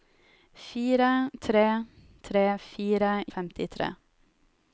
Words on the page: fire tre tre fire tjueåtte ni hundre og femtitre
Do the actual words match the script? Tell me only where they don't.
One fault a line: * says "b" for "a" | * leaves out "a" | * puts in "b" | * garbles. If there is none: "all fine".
* leaves out "tjueåtte ni hundre"